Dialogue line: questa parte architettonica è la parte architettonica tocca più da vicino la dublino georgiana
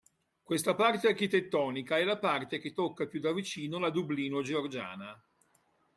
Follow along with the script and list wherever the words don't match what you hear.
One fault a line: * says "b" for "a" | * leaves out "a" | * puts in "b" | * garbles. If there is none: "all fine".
* says "che" for "architettonica"